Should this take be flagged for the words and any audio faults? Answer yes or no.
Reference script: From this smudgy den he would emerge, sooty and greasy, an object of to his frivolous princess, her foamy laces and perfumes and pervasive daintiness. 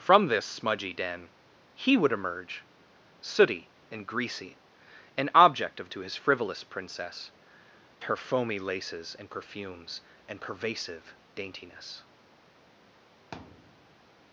yes